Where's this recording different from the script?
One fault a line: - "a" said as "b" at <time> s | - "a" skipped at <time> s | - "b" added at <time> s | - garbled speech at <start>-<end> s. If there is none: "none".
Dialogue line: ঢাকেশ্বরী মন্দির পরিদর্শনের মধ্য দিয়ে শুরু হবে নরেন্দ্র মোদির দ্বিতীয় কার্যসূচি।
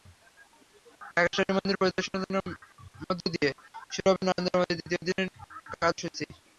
- "দিনের" added at 5.1 s